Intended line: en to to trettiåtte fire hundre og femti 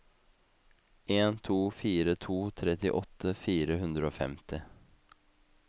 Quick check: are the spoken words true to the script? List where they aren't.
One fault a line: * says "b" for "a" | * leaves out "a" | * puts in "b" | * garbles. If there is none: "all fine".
* puts in "fire"